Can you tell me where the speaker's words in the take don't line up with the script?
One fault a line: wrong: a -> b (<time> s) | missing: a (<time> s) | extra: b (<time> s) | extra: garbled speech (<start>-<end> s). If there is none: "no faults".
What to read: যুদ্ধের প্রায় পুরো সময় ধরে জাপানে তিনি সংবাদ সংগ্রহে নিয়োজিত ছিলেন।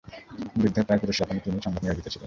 missing: সময় ধরে (1.1 s)
missing: সংগ্রহে (1.8 s)